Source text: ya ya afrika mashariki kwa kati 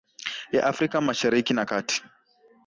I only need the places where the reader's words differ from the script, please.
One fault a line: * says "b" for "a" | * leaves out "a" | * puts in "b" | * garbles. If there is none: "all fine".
* leaves out "ya"
* says "na" for "kwa"